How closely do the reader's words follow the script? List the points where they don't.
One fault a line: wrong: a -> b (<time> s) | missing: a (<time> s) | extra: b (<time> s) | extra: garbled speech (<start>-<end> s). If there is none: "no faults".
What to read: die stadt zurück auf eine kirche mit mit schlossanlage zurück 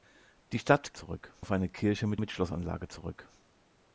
no faults